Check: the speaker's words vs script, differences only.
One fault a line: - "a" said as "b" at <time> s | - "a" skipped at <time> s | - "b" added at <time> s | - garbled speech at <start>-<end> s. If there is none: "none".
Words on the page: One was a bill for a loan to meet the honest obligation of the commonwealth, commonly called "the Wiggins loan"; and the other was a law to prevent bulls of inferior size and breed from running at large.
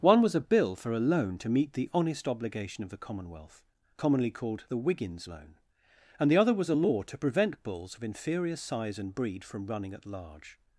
none